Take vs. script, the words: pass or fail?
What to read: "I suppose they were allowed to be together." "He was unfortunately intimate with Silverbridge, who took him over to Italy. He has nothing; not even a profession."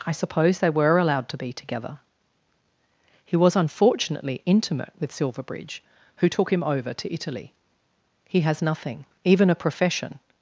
fail